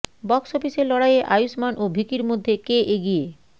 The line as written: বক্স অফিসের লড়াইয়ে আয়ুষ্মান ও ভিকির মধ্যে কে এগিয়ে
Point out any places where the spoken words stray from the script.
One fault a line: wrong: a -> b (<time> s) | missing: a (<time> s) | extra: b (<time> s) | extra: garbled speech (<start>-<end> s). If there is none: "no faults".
no faults